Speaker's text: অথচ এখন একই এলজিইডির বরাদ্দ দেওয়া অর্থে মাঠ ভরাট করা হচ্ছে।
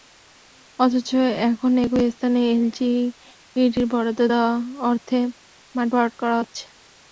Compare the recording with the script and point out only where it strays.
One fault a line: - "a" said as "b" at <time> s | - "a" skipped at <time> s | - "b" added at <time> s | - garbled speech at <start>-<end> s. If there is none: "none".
- "স্থানে" added at 2.1 s